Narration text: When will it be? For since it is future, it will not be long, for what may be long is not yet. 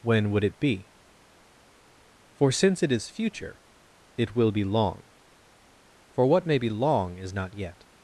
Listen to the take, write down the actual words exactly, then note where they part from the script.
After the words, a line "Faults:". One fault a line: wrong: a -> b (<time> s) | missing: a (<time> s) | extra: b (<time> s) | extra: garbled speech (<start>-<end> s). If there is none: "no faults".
When would it be? For since it is future, it will be long, for what may be long is not yet.
Faults:
wrong: will -> would (0.3 s)
missing: not (4.5 s)